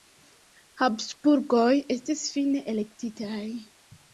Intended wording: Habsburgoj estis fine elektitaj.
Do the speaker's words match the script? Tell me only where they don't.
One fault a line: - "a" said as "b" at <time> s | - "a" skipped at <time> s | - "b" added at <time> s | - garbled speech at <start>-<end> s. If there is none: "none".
none